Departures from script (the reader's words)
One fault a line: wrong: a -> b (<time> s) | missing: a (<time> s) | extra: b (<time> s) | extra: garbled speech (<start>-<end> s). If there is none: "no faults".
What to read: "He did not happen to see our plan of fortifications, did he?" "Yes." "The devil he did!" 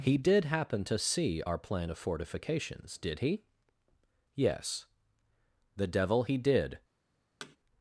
missing: not (0.5 s)